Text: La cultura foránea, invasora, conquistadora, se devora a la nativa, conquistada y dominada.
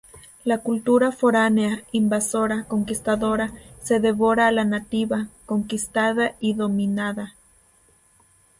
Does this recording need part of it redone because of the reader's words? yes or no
no